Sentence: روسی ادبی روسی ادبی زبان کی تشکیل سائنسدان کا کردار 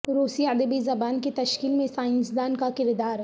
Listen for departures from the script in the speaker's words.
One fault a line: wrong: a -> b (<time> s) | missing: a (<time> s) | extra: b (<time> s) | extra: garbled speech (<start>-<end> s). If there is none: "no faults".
missing: روسی ادبی (0.8 s)
extra: میں (1.7 s)